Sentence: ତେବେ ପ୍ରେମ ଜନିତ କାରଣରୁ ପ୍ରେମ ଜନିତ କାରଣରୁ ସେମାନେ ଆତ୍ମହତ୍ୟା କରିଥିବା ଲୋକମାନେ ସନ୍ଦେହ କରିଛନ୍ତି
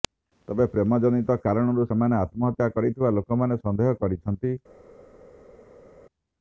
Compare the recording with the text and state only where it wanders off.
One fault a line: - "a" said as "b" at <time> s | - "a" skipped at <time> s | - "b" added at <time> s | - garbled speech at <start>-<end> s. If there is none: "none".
- "ପ୍ରେମ ଜନିତ କାରଣରୁ" skipped at 1.9 s